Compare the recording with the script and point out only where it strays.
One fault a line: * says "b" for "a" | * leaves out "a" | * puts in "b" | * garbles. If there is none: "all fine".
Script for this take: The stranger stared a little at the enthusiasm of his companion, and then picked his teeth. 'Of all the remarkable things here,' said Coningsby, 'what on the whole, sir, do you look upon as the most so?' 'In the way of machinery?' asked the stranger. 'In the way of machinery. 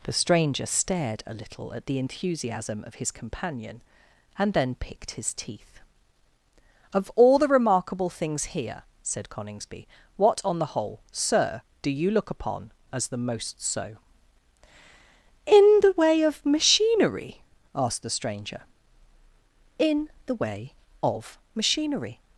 all fine